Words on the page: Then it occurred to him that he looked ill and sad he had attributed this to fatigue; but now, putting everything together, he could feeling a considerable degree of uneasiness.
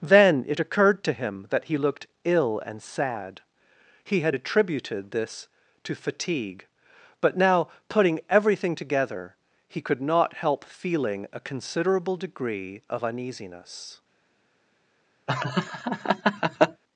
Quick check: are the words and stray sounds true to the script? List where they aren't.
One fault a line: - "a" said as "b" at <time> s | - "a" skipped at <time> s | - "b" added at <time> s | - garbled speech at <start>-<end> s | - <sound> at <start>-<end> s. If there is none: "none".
- "not help" added at 10.0 s
- laugh at 15.3-16.8 s